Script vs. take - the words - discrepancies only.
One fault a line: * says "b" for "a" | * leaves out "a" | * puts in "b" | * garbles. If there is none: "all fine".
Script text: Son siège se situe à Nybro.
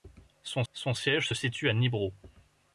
* puts in "son"